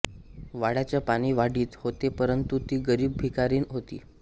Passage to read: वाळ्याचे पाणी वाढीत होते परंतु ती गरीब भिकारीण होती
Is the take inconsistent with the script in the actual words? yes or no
no